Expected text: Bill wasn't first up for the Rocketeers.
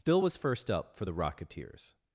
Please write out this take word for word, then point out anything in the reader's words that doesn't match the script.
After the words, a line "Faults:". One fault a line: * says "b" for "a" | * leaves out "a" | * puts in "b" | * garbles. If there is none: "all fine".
Bill was first up for the Rocketeers.
Faults:
* says "was" for "wasn't"